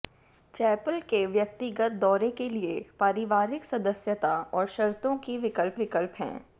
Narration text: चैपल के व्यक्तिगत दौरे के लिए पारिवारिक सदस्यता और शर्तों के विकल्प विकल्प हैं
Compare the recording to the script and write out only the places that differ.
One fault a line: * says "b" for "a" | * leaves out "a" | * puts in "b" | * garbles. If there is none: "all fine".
all fine